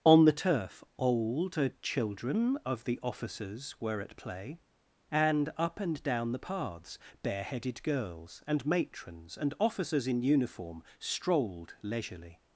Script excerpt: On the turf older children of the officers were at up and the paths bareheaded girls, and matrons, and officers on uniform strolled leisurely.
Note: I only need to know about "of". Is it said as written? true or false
true